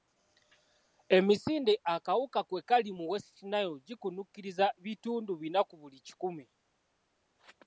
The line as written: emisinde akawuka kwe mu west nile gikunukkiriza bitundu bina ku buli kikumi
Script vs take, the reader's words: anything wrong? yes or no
yes